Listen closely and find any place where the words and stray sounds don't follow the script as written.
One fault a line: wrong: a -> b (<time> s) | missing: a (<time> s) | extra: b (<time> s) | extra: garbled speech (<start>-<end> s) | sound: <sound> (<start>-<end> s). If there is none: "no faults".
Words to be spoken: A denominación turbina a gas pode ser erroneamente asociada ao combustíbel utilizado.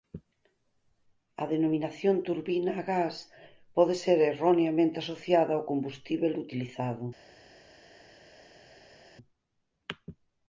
no faults